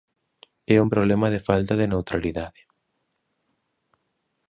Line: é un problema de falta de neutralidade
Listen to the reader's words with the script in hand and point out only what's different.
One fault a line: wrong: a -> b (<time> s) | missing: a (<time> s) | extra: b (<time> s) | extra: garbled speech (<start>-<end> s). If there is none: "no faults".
no faults